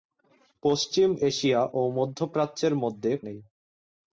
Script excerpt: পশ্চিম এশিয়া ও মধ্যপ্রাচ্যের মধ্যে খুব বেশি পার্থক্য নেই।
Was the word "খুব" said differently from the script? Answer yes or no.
yes